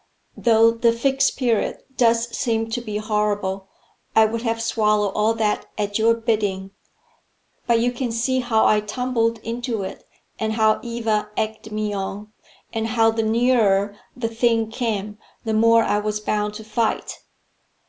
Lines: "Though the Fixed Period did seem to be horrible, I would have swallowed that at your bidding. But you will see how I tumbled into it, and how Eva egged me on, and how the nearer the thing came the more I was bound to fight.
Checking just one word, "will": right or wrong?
wrong